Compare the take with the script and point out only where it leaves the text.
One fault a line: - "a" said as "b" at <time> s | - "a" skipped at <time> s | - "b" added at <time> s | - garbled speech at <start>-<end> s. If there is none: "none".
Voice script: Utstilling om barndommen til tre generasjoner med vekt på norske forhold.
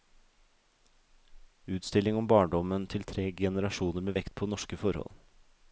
none